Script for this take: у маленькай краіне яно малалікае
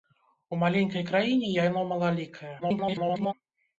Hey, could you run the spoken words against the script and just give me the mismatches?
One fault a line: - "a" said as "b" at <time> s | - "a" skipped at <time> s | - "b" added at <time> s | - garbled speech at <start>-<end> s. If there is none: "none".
- garbled speech at 2.6-3.3 s